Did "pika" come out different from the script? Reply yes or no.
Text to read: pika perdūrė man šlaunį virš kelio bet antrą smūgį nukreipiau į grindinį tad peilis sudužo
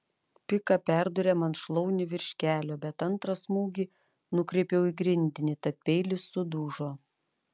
no